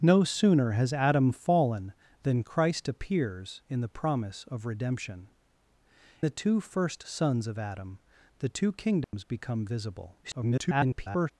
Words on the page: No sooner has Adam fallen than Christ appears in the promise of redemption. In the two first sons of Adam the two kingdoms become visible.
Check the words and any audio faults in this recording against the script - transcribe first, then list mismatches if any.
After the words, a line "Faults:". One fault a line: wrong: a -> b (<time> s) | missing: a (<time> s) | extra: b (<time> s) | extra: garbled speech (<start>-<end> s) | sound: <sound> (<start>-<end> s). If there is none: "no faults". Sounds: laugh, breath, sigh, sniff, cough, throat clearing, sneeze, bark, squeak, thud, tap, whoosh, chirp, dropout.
No sooner has Adam fallen than Christ appears in the promise of redemption. The two first sons of Adam the two kingdoms become visible. [garbled]
Faults:
missing: In (5.3 s)
sound: dropout (9.0-9.1 s)
extra: garbled speech (10.2-11.3 s)